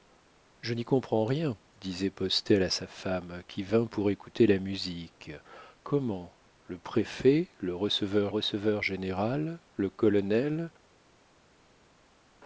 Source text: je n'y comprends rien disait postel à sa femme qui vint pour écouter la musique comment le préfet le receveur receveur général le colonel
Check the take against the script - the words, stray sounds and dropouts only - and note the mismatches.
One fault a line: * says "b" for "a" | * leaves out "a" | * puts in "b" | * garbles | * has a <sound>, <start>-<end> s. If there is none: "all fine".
all fine